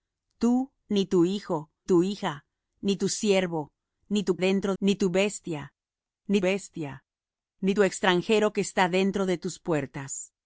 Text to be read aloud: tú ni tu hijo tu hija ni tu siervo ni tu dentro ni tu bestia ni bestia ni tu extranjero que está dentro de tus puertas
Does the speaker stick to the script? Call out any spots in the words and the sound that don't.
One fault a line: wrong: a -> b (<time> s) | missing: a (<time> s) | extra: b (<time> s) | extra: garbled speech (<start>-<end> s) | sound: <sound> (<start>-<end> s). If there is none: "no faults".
no faults